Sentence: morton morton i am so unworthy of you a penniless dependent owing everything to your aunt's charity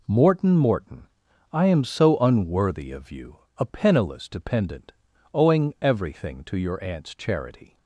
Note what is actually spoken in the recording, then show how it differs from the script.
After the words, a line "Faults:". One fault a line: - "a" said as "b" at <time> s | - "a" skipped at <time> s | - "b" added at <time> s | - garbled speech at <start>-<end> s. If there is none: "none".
morton morton i am so unworthy of you a penniless dependent owing everything to your aunt's charity
Faults:
none